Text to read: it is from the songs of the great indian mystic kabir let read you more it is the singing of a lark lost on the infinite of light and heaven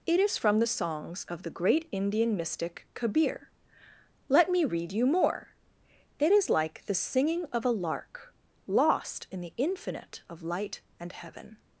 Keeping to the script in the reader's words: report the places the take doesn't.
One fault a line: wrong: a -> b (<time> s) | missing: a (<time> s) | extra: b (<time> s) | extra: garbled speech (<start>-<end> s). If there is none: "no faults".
extra: me (4.5 s)
extra: like (6.5 s)
wrong: on -> in (9.3 s)